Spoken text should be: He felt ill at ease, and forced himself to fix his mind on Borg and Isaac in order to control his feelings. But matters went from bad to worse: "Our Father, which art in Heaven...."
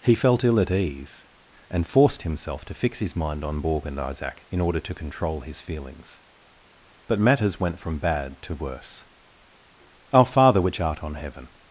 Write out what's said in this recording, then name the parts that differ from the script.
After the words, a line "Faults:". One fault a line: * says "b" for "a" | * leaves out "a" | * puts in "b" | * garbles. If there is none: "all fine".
He felt ill at ease, and forced himself to fix his mind on Borg and Isaac in order to control his feelings. But matters went from bad to worse: "Our Father, which art on Heaven...."
Faults:
* says "on" for "in"